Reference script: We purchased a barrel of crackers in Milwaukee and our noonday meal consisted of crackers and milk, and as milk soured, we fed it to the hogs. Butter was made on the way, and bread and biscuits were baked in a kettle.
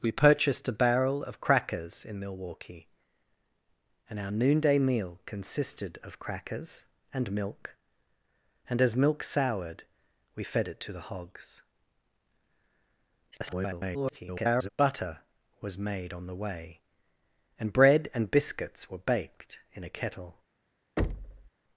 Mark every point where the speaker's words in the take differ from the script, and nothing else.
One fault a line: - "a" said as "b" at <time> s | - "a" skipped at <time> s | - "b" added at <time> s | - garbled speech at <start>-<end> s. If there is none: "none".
- garbled speech at 13.3-14.7 s